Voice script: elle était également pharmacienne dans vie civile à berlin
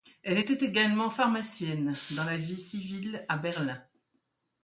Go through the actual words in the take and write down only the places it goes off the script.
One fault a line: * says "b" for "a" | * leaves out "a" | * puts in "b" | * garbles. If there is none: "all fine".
* puts in "la"